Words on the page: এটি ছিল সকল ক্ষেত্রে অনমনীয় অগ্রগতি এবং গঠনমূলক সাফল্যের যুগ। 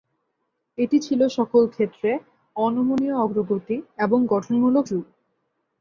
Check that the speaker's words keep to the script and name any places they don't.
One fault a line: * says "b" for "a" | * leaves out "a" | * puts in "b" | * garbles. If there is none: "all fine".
* leaves out "সাফল্যের"